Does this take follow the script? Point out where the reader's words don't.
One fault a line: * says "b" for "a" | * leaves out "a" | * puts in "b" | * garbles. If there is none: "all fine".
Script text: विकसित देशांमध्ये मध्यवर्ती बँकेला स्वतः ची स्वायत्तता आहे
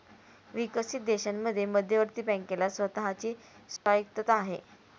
all fine